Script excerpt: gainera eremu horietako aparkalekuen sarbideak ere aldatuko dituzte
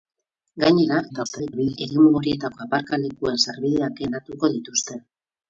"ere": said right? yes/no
no